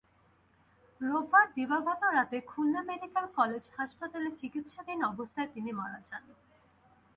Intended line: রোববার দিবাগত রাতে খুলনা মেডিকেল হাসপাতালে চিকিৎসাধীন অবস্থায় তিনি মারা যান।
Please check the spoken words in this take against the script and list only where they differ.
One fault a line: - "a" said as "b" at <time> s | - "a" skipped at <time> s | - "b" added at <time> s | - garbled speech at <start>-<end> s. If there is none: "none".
- "কলেজ" added at 3.4 s